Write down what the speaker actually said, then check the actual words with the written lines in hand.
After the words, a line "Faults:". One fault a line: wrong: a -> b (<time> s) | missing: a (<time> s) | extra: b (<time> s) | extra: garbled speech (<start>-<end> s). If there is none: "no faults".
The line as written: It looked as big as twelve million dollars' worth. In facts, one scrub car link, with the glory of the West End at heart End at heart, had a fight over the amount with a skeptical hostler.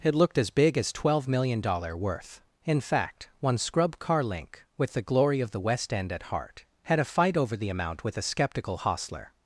It looked as big as twelve million dollars' worth. In fact, one scrub car link, with the glory of the West End at heart, had a fight over the amount with a skeptical hostler.
Faults:
wrong: facts -> fact (2.8 s)
missing: End at heart (6.7 s)